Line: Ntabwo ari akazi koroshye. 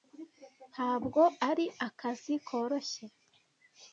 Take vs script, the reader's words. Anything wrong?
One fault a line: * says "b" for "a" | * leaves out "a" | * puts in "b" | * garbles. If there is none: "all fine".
all fine